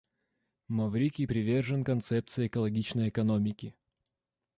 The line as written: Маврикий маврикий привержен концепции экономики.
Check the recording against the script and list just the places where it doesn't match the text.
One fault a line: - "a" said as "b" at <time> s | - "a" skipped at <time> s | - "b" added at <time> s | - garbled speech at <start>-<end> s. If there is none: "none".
- "маврикий" skipped at 1.3 s
- "экологичной" added at 2.5 s